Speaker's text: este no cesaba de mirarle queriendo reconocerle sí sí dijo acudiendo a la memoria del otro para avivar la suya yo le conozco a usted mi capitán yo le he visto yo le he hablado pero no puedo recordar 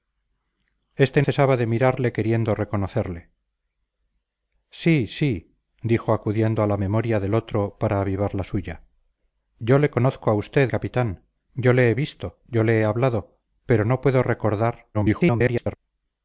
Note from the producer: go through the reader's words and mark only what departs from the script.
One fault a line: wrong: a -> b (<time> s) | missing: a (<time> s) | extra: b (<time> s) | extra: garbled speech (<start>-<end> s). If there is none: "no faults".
missing: no (1.2 s)
missing: mi (10.7 s)
extra: garbled speech (14.9-15.8 s)